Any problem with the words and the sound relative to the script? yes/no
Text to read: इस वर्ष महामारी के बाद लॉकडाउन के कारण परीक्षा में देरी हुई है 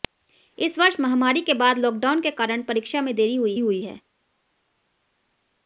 yes